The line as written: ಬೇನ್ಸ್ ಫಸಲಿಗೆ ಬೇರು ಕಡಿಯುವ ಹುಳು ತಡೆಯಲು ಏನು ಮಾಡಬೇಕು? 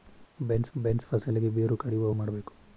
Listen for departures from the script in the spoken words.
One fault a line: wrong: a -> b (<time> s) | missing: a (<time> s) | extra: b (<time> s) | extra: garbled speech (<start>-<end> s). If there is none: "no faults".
extra: ಬೇನ್ಸ್ (0.8 s)
missing: ಹುಳು ತಡೆಯಲು ಏನು (2.1 s)